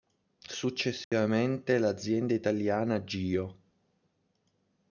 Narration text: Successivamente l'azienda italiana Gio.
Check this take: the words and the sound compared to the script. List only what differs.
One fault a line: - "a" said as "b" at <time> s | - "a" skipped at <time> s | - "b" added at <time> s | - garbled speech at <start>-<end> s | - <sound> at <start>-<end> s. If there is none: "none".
- dropout at 1.0-1.1 s